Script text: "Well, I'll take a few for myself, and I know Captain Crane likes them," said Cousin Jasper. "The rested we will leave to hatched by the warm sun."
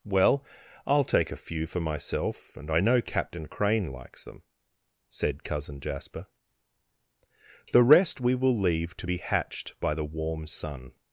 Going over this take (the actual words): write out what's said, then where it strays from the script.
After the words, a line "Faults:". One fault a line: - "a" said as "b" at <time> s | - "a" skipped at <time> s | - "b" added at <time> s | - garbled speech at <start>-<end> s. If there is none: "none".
"Well, I'll take a few for myself, and I know Captain Crane likes them," said Cousin Jasper. "The rest we will leave to be hatched by the warm sun."
Faults:
- "rested" said as "rest" at 7.8 s
- "be" added at 9.0 s